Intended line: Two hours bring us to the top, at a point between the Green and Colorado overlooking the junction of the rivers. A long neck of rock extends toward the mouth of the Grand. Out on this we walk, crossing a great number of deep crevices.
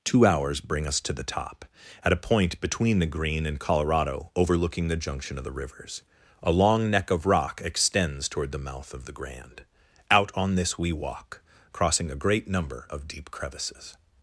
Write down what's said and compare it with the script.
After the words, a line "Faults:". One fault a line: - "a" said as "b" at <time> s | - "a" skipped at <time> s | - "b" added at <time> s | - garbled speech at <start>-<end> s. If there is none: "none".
Two hours bring us to the top, at a point between the Green and Colorado overlooking the junction of the rivers. A long neck of rock extends toward the mouth of the Grand. Out on this we walk, crossing a great number of deep crevices.
Faults:
none